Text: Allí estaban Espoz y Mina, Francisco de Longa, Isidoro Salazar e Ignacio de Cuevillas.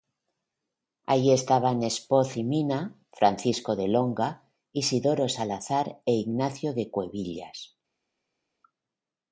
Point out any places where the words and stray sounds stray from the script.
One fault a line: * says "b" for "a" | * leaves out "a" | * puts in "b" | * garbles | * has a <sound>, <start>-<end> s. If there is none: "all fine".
all fine